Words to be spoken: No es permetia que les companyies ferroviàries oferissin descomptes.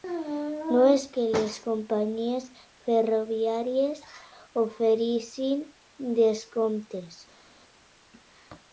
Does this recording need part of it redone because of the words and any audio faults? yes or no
yes